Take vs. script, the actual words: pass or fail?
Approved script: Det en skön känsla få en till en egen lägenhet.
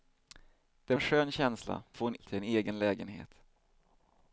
pass